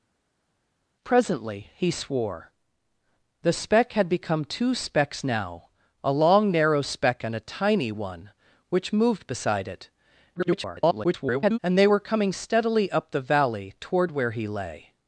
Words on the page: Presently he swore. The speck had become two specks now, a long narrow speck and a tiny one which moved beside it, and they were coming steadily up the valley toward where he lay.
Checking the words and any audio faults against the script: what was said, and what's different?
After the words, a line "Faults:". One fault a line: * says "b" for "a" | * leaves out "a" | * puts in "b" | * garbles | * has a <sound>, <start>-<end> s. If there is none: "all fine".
Presently he swore. The speck had become two specks now, a long narrow speck and a tiny one which moved beside it, [garbled] and they were coming steadily up the valley toward where he lay.
Faults:
* garbles